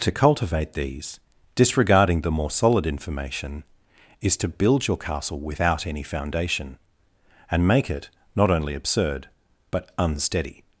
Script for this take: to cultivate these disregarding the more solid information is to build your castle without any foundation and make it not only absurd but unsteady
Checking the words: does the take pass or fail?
pass